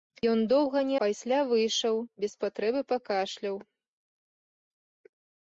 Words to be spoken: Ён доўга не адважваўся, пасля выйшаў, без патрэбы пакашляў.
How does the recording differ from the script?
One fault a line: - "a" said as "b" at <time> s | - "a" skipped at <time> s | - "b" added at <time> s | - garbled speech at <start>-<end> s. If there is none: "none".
- "адважваўся" skipped at 0.9 s